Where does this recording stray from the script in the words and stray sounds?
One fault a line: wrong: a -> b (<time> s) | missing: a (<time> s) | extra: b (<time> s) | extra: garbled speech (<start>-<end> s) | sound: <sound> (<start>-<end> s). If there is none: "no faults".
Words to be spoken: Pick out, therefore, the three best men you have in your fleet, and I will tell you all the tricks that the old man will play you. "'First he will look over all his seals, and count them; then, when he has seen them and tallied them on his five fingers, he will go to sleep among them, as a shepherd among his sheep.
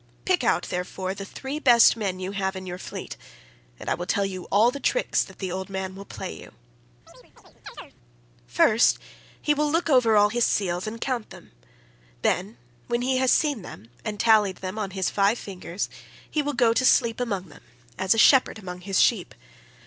sound: chirp (7.1-8.0 s)